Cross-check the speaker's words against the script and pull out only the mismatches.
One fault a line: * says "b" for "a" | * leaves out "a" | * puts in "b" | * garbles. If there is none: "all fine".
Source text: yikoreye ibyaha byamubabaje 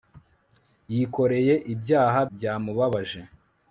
all fine